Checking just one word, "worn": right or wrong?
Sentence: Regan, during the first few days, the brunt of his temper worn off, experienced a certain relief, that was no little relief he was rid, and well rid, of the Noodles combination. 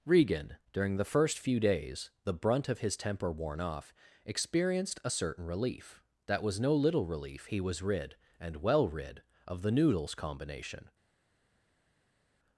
right